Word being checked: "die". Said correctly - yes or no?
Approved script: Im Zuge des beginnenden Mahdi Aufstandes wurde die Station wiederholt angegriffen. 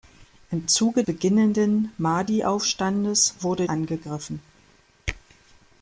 no